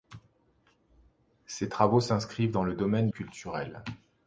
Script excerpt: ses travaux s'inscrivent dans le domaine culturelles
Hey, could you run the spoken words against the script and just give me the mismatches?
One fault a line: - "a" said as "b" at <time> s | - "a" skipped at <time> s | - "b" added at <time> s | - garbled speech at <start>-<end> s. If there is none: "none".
none